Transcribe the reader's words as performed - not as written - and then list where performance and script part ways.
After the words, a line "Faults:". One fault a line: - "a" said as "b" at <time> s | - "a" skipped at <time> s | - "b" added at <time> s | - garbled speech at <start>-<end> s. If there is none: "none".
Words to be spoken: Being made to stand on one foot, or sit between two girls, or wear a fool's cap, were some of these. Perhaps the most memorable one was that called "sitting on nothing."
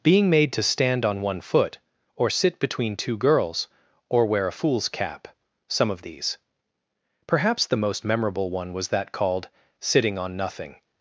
Being made to stand on one foot, or sit between two girls, or wear a fool's cap, some of these. Perhaps the most memorable one was that called "sitting on nothing."
Faults:
- "were" skipped at 5.3 s